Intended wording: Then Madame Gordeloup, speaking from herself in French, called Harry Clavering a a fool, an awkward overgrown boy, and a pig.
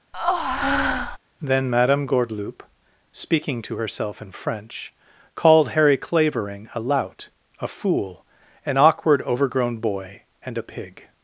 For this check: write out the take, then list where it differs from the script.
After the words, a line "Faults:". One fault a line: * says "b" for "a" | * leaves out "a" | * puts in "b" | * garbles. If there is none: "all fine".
Then Madame Gordeloup, speaking to herself in French, called Harry Clavering a lout, a fool, an awkward overgrown boy, and a pig.
Faults:
* says "to" for "from"
* puts in "lout"